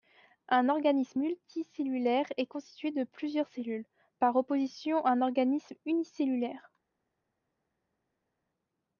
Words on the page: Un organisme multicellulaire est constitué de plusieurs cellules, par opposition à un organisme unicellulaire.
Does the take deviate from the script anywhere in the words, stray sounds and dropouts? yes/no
no